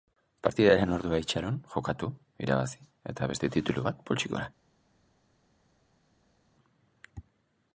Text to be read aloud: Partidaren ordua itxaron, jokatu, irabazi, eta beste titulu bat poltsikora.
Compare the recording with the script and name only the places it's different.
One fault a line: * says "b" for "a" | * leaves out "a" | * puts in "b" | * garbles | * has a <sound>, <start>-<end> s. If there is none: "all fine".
all fine